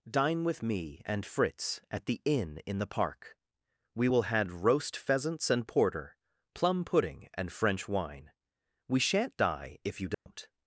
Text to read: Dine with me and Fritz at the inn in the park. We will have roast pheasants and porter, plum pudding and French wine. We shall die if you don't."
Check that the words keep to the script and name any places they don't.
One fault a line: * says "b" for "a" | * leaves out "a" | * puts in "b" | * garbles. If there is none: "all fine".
* says "had" for "have"
* says "shan't" for "shall"